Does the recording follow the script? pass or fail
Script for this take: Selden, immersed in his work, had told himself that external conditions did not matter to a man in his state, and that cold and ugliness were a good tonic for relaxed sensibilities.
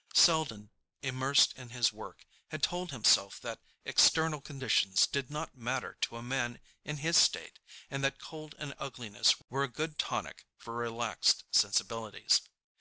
pass